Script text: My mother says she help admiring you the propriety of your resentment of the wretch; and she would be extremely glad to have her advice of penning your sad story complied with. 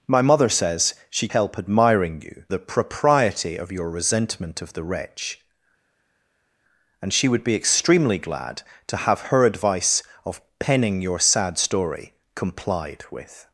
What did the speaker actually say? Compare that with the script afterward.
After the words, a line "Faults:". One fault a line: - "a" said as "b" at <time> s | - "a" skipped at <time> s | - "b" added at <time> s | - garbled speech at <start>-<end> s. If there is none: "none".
My mother says she help admiring you the propriety of your resentment of the wretch; and she would be extremely glad to have her advice of penning your sad story complied with.
Faults:
none